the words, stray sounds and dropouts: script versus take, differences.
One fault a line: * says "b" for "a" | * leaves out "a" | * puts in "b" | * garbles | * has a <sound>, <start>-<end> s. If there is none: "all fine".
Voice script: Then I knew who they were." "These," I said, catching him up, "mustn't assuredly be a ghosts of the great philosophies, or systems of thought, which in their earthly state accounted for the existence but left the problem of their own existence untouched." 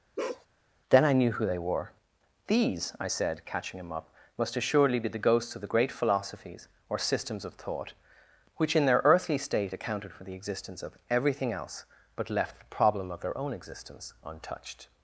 * has a bark, 0.2-0.5 s
* says "must" for "mustn't"
* says "the" for "a"
* puts in "of everything else"